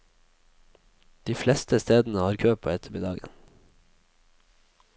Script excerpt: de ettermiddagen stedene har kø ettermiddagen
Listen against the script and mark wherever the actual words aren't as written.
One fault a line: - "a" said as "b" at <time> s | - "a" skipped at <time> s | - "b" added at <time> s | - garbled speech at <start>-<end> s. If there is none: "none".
- "ettermiddagen" said as "fleste" at 1.4 s
- "på" added at 2.5 s